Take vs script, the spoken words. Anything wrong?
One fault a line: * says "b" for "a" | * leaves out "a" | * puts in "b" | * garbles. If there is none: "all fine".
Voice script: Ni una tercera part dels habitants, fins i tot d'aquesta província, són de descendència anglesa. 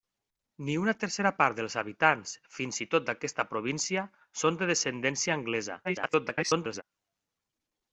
* garbles